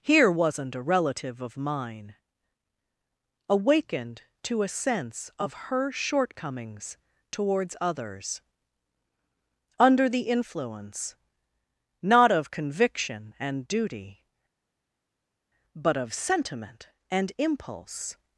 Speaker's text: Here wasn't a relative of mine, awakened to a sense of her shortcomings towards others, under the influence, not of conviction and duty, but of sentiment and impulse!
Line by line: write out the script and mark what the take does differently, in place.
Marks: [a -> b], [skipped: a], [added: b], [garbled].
Here wasn't a relative of mine, awakened to a sense of her shortcomings towards others, under the influence, not of conviction and duty, but of sentiment and impulse!